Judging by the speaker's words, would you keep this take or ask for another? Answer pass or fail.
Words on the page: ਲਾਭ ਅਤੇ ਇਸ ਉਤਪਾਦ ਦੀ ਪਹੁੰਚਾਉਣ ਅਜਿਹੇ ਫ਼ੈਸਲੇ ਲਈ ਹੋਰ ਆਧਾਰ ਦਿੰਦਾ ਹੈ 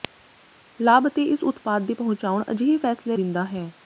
fail